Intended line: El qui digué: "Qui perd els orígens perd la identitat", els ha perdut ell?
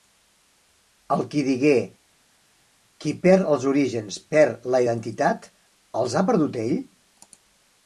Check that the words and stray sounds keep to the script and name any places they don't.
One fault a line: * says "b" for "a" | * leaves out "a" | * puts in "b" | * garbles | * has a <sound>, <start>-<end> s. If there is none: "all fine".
all fine